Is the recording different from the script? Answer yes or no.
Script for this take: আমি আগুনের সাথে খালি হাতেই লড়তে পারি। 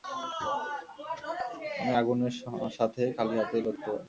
no